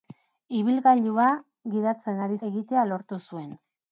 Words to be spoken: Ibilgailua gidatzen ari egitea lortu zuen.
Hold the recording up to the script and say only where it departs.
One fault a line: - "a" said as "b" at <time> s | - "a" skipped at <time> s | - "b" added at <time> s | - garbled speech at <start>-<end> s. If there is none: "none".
none